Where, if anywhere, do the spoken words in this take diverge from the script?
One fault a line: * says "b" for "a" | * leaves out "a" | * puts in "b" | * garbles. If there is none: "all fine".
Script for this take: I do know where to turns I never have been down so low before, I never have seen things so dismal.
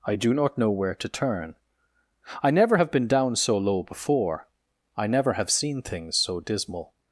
* puts in "not"
* says "turn" for "turns"